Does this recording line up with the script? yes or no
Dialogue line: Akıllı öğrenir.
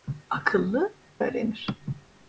yes